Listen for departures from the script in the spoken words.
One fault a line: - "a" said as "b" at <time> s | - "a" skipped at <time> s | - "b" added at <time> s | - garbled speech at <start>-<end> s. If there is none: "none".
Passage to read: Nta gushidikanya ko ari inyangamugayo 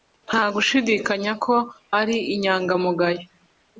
none